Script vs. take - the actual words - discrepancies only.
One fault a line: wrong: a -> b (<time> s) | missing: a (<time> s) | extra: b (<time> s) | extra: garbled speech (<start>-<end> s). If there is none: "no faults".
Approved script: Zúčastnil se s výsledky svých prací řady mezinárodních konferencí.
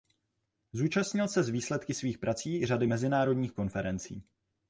no faults